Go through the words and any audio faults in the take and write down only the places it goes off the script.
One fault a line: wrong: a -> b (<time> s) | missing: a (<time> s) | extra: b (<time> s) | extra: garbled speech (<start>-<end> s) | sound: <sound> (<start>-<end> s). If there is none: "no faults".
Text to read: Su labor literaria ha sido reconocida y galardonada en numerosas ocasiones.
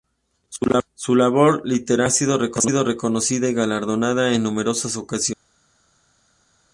no faults